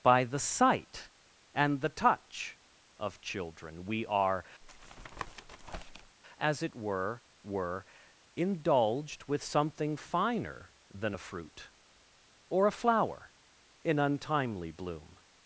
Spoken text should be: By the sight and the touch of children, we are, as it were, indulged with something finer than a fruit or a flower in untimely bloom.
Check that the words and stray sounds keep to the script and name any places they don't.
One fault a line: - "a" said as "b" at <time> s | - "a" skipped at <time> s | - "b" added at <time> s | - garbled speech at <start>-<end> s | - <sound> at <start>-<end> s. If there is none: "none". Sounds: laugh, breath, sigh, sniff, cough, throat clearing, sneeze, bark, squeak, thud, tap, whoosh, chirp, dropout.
- tap at 4.6-6.2 s
- "were" added at 7.4 s